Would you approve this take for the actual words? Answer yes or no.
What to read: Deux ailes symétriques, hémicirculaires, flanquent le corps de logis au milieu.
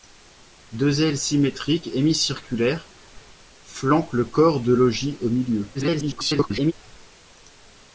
no